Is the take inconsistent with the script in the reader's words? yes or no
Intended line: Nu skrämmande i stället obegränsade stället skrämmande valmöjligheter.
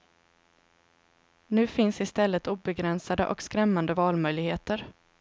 yes